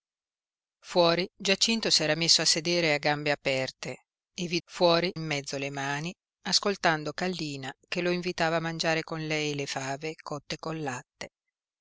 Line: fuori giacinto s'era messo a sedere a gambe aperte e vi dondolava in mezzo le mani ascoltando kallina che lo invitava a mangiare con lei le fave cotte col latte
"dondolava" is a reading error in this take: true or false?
true